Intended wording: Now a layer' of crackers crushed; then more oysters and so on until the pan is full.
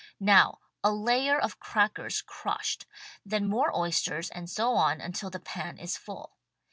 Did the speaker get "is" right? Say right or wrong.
right